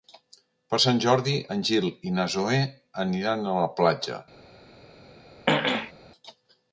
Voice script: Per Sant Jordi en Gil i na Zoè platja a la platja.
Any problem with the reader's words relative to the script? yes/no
yes